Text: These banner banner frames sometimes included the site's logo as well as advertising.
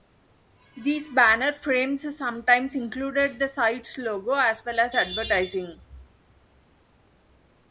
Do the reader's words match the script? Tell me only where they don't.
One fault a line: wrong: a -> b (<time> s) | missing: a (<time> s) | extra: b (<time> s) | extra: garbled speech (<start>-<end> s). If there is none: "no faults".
missing: banner (1.5 s)